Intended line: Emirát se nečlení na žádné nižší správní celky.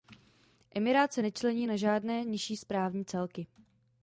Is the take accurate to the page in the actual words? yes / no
yes